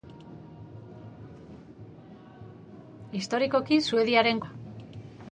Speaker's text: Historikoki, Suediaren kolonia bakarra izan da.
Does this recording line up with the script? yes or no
no